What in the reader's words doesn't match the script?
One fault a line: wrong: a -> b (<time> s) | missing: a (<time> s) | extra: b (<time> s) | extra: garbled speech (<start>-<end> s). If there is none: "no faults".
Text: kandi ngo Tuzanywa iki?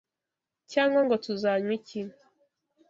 wrong: kandi -> cyangwa (0.7 s)